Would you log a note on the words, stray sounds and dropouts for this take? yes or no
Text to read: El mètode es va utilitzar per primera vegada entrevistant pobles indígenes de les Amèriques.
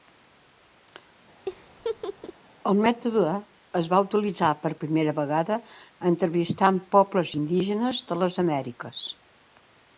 yes